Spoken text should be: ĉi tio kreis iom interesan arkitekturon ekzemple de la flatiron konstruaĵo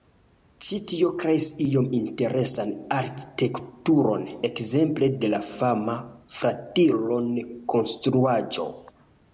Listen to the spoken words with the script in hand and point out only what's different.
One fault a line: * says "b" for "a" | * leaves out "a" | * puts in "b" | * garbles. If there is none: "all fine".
* puts in "fama"